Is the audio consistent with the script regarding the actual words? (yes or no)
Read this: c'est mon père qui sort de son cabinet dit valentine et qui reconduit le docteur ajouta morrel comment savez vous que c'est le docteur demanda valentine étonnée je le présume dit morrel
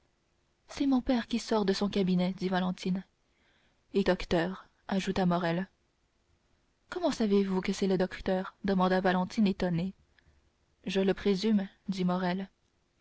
no